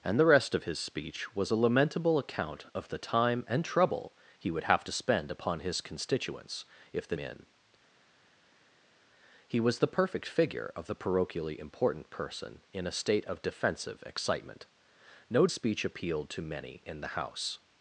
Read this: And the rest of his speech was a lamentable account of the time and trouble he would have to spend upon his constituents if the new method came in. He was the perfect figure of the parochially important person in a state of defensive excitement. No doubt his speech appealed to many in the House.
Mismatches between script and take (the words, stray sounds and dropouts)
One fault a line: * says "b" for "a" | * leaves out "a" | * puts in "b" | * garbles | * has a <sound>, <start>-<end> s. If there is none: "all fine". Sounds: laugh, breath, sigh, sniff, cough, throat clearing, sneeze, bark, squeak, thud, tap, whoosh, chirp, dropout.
* leaves out "new method came"
* leaves out "doubt his"